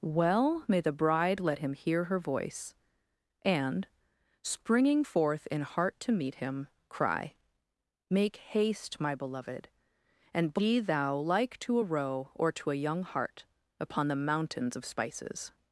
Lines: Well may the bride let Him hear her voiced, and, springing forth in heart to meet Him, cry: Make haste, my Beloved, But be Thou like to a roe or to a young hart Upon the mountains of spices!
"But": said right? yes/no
no